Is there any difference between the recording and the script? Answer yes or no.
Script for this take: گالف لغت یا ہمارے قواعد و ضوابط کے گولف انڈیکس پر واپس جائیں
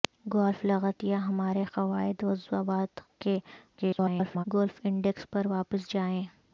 yes